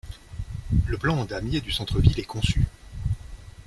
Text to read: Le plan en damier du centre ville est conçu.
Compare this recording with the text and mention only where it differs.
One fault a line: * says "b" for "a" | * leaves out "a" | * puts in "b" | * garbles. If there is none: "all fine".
all fine